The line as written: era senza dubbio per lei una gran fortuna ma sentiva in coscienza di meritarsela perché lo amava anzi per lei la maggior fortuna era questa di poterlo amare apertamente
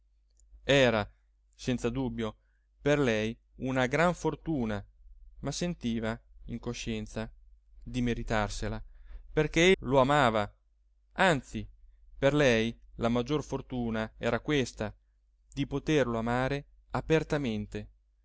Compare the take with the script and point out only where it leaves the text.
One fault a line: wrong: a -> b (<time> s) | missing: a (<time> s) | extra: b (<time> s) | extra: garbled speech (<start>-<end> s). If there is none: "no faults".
no faults